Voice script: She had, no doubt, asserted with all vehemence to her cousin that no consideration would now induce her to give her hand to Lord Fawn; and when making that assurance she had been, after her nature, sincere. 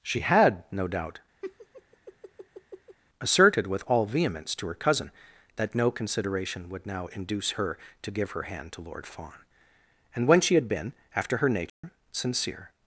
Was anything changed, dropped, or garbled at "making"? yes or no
yes